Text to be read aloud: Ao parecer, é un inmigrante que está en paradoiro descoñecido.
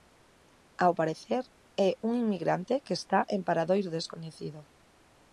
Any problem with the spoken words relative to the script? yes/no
no